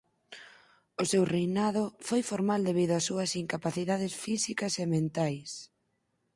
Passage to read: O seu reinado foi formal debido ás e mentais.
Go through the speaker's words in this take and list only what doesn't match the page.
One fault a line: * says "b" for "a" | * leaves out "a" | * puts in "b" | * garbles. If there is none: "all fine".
* puts in "súas incapacidades físicas"